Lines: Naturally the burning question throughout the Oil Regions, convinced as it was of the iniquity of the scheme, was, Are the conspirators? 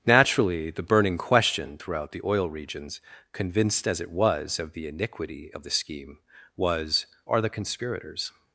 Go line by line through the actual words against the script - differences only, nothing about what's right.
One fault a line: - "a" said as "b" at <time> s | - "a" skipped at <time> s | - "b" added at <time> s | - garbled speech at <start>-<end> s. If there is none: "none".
none